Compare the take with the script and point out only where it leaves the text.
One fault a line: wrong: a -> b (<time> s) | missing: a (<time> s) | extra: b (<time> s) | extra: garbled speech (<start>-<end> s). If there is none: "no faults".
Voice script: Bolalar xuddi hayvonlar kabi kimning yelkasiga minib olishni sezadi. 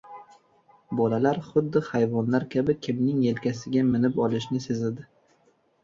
no faults